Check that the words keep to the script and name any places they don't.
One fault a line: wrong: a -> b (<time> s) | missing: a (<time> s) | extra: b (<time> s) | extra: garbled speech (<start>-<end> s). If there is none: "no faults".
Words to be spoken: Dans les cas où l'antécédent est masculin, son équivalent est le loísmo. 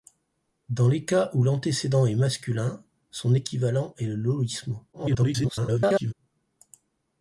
extra: garbled speech (4.9-6.1 s)